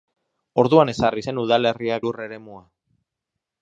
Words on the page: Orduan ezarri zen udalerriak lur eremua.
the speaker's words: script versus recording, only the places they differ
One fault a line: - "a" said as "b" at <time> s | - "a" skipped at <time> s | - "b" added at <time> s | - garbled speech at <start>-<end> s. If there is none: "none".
none